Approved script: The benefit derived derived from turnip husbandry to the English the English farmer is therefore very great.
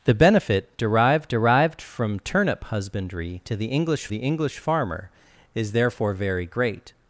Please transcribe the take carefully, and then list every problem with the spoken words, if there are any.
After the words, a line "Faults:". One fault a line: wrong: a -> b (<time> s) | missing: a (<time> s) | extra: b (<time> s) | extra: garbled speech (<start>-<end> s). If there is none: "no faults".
The benefit derived derived from turnip husbandry to the English the English farmer is therefore very great.
Faults:
no faults